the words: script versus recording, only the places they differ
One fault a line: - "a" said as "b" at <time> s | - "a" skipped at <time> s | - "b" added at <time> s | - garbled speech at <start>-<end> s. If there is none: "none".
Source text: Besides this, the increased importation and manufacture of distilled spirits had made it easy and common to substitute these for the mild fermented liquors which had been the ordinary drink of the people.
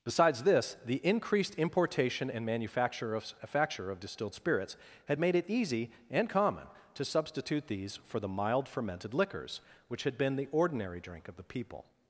- "manufacture of" added at 3.4 s